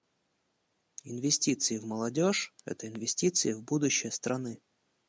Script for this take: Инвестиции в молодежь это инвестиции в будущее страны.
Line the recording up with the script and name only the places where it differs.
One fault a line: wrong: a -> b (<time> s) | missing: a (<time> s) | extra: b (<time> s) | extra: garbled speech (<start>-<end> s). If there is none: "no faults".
no faults